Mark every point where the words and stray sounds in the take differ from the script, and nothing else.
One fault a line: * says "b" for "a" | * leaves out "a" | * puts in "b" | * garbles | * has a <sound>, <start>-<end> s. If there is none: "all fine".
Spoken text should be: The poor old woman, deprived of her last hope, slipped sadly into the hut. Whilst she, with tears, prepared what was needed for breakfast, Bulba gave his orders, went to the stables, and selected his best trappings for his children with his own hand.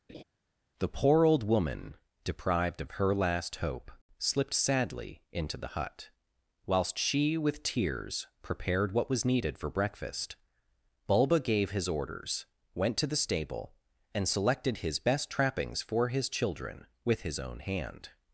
* has a laugh, 0.1-0.2 s
* says "stable" for "stables"